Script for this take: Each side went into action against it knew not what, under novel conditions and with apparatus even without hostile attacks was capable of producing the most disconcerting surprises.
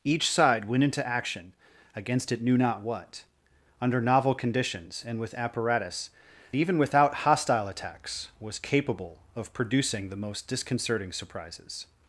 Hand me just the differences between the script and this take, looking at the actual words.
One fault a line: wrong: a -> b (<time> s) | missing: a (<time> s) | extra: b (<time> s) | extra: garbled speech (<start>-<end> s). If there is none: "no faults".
no faults